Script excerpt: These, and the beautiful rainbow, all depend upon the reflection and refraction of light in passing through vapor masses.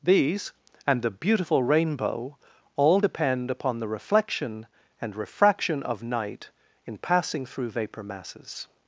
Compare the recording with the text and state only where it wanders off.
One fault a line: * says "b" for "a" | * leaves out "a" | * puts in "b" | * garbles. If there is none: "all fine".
* says "night" for "light"